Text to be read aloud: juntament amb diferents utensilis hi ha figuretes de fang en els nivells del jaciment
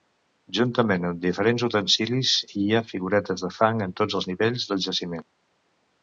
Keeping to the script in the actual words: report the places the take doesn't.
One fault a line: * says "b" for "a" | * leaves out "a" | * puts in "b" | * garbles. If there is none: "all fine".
* puts in "tots"